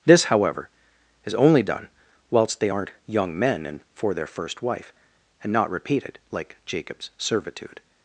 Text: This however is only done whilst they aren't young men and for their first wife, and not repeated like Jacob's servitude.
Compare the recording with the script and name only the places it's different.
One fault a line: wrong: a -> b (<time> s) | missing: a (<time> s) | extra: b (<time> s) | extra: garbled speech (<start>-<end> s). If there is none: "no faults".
no faults